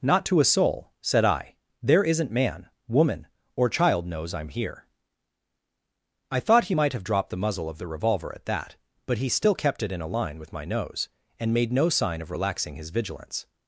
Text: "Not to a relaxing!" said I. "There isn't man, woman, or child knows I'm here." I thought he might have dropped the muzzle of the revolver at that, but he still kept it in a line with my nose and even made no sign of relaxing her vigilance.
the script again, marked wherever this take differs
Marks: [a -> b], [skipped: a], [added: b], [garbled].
"Not to a [relaxing!" -> soul] said I. "There isn't man, woman, or child knows I'm here." I thought he might have dropped the muzzle of the revolver at that, but he still kept it in a line with my nose and [skipped: even] made no sign of relaxing [her -> his] vigilance.